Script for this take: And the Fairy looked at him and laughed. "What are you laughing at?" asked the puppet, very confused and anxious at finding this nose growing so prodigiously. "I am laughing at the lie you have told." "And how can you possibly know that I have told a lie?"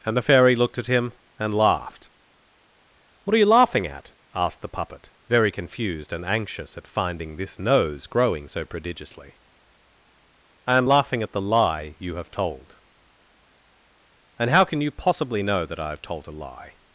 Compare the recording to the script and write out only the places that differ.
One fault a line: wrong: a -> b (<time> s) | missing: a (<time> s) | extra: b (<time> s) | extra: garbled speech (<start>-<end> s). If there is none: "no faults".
no faults